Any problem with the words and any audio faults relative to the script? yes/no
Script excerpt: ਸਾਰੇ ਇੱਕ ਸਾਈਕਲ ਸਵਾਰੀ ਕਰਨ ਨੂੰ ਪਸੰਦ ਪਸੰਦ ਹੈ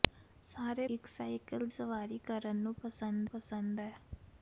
no